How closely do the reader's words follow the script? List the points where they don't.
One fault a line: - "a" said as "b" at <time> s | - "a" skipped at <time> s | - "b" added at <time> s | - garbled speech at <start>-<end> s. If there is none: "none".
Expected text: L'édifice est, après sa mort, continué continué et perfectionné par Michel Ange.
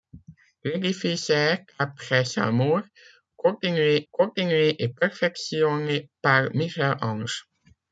none